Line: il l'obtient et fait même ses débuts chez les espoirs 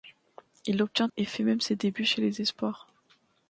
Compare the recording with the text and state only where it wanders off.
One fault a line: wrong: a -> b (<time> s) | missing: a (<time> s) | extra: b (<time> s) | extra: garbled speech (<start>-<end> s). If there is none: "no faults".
no faults